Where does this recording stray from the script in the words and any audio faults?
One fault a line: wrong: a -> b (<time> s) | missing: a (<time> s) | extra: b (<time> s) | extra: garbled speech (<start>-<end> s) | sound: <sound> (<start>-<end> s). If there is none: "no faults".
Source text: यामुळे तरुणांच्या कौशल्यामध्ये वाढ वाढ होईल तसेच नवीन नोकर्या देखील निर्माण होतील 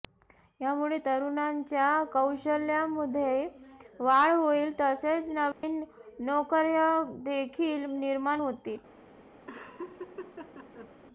missing: वाढ (4.3 s)
sound: dropout (5.5-5.6 s)
sound: laugh (9.5-10.9 s)